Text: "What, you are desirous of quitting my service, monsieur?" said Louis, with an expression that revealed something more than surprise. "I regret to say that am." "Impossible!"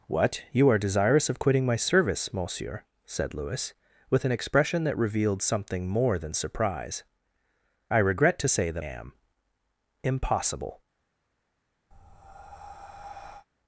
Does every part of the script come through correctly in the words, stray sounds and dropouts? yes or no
no